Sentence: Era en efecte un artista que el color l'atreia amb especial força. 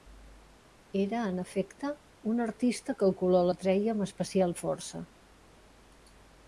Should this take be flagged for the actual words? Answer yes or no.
no